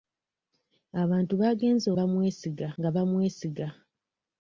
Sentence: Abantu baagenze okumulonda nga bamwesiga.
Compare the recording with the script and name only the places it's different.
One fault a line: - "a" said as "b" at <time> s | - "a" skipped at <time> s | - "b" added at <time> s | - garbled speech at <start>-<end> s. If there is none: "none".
- "okumulonda" said as "bamwesiga" at 2.0 s